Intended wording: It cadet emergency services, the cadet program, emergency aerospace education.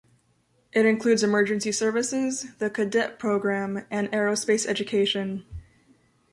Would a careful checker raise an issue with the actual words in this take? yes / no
yes